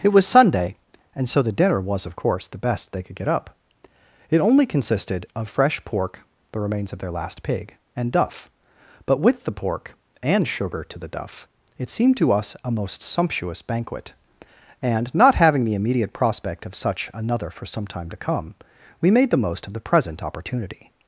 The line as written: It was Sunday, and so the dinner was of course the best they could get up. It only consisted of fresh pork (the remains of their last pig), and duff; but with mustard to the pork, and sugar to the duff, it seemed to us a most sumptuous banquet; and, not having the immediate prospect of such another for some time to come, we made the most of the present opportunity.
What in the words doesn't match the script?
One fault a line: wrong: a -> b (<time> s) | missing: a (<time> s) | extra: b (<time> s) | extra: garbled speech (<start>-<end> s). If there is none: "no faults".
missing: mustard to (9.4 s)